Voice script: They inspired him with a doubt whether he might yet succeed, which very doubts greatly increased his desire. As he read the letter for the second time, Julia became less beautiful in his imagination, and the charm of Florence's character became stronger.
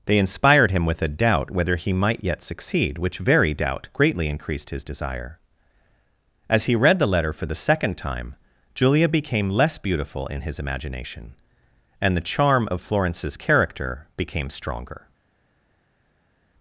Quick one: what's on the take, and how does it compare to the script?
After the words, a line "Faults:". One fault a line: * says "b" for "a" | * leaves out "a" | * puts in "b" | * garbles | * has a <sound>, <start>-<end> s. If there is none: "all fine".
They inspired him with a doubt whether he might yet succeed, which very doubt greatly increased his desire. As he read the letter for the second time, Julia became less beautiful in his imagination, and the charm of Florence's character became stronger.
Faults:
* says "doubt" for "doubts"